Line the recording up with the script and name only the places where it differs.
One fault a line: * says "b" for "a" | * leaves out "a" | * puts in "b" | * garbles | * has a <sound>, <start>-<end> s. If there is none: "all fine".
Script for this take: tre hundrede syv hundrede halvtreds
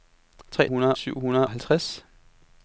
all fine